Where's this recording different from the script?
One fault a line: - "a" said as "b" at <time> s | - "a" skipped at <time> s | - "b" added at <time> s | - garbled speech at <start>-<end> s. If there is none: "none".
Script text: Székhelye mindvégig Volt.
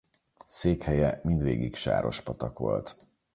- "Sárospatak" added at 1.8 s